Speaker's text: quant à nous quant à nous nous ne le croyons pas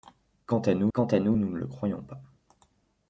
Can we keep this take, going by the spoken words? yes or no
yes